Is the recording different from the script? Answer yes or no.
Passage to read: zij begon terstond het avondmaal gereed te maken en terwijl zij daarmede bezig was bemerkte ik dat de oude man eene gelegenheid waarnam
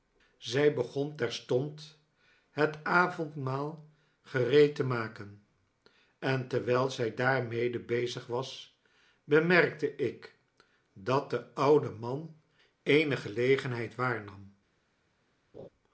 no